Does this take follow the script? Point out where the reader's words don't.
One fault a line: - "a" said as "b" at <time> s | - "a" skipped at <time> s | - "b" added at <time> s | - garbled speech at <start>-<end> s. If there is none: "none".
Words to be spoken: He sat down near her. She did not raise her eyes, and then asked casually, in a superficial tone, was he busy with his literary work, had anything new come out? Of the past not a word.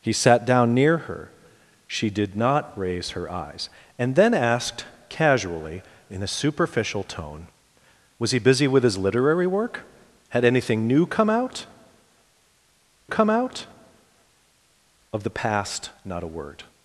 - "come out" added at 13.1 s